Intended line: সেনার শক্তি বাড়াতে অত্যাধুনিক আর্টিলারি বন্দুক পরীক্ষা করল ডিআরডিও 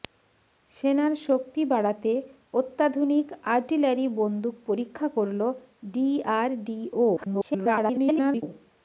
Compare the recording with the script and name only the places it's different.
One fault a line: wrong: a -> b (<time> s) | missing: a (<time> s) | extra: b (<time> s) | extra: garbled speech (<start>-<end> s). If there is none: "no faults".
extra: garbled speech (7.2-8.4 s)